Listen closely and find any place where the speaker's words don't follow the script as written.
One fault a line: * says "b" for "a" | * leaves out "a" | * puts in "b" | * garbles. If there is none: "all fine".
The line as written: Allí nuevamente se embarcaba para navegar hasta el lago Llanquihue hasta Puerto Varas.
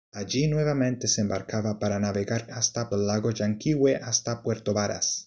all fine